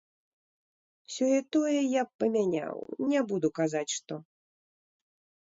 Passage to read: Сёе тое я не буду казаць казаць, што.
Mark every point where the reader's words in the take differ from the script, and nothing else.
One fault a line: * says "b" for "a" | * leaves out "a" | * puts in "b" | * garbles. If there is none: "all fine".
* puts in "б памяняў"
* leaves out "казаць"